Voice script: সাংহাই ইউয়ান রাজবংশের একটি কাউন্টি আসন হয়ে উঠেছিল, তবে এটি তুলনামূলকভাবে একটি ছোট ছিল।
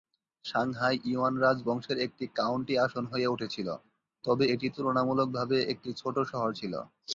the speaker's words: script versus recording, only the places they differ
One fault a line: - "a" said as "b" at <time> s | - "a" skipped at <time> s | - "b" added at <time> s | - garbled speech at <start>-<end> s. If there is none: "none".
- "শহর" added at 6.3 s